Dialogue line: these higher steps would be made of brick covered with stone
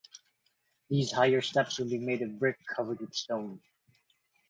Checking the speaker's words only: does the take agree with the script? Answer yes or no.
yes